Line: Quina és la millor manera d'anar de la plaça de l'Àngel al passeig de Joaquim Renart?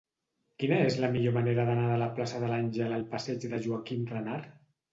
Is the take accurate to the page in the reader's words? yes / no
yes